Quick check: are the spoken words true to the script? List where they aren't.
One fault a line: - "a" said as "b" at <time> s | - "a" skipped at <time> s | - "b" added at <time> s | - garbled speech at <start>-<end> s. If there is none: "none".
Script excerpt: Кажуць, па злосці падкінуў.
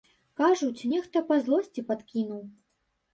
- "нехта" added at 0.9 s